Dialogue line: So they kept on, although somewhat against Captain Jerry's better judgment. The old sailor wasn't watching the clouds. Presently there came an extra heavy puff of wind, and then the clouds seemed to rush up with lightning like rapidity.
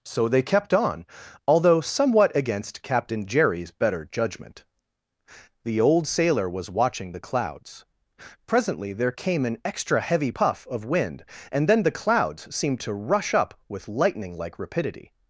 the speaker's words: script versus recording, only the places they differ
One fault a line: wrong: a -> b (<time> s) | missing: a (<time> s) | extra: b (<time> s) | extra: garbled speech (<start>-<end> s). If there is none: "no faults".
wrong: wasn't -> was (6.5 s)